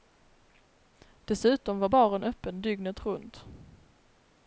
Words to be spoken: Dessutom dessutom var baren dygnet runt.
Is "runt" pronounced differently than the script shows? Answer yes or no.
no